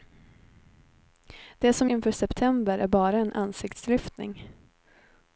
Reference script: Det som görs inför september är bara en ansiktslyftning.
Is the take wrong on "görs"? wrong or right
wrong